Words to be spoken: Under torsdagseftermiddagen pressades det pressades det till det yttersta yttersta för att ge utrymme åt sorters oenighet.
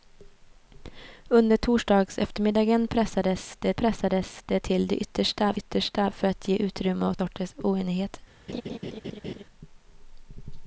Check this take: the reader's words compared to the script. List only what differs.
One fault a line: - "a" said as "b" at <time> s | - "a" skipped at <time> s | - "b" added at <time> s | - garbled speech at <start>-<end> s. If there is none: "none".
none